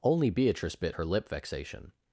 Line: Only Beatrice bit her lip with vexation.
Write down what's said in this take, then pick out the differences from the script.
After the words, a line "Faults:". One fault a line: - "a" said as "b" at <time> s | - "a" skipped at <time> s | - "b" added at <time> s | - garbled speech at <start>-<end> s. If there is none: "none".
Only Beatrice bit her lip vexation.
Faults:
- "with" skipped at 1.3 s